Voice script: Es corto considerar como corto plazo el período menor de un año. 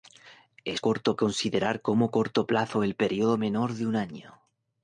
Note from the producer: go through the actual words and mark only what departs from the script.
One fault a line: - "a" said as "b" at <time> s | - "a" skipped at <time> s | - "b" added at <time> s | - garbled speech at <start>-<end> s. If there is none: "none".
none